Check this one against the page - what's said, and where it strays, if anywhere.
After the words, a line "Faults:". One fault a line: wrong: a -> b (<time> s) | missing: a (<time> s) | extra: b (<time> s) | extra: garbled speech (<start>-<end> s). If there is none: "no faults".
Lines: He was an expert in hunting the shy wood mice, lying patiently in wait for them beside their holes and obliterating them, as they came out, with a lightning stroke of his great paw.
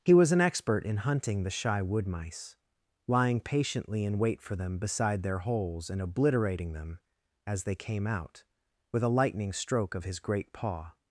He was an expert in hunting the shy wood mice, lying patiently in wait for them beside their holes and obliterating them, as they came out, with a lightning stroke of his great paw.
Faults:
no faults